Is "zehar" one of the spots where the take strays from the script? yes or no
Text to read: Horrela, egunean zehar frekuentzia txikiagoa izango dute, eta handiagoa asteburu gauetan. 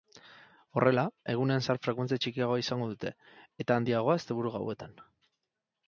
no